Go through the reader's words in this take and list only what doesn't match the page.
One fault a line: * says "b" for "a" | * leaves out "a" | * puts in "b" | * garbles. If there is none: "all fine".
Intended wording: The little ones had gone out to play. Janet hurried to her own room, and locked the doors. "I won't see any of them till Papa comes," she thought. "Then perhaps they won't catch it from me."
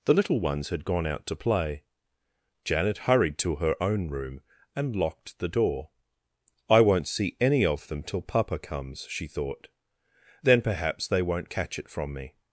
* says "door" for "doors"